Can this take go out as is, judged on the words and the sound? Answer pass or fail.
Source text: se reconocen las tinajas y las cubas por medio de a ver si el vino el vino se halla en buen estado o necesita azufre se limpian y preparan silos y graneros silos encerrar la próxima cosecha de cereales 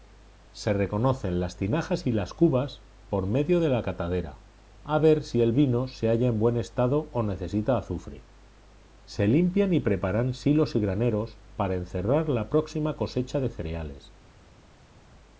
fail